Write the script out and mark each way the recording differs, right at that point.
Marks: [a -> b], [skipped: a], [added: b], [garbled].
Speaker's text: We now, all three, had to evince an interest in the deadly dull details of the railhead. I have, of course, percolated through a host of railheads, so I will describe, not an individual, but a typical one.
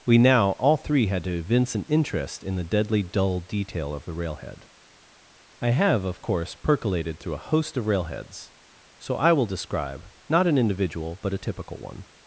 We now, all three, had to evince an interest in the deadly dull [details -> detail] of the railhead. I have, of course, percolated through a host of railheads, so I will describe, not an individual, but a typical one.